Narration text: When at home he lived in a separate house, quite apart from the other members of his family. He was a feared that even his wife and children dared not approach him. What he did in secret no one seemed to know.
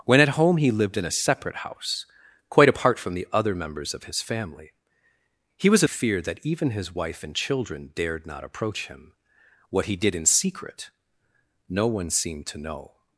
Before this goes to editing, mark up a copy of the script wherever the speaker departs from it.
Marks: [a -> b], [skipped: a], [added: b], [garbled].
When at home he lived in a separate house, quite apart from the other members of his family. He was a feared that even his wife and children dared not approach him. What he did in secret no one seemed to know.